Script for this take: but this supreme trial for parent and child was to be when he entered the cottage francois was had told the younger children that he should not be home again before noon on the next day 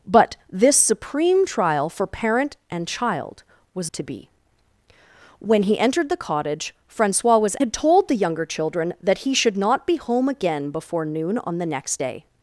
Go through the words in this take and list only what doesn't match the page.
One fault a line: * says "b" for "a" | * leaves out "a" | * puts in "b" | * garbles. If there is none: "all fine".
all fine